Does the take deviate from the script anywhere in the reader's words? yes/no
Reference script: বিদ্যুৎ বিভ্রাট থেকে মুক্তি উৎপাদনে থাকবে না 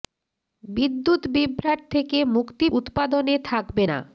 no